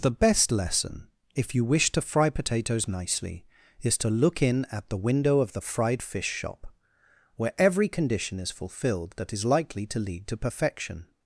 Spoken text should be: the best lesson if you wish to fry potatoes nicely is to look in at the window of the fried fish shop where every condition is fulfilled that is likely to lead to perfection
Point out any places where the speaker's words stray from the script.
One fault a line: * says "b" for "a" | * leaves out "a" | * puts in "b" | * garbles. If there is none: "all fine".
all fine